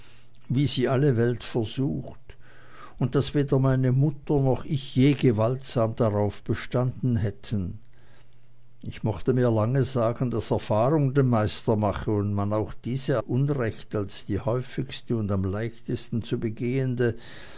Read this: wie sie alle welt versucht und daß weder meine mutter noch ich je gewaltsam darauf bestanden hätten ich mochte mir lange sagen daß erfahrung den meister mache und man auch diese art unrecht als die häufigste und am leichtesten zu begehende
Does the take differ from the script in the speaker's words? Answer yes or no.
yes